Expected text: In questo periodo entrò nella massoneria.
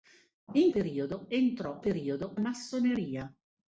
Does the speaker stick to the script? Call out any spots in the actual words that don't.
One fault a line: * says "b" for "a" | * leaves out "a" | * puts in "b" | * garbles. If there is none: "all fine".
* leaves out "questo"
* says "periodo" for "nella"